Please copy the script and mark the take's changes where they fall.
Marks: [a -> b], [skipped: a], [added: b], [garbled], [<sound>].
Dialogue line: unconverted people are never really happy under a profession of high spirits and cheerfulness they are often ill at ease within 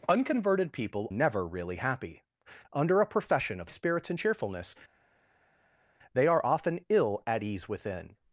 unconverted people [skipped: are] never really happy under a profession of [skipped: high] spirits and cheerfulness they are often ill at ease within